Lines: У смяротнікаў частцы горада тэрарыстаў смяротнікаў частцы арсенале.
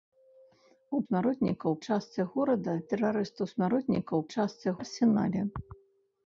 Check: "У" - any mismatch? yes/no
no